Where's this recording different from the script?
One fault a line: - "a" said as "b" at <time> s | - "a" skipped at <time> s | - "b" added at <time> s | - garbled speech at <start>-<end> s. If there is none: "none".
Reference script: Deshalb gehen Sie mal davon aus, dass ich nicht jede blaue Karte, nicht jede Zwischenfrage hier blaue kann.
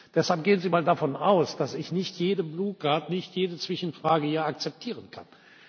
- "blaue" said as "akzeptieren" at 4.5 s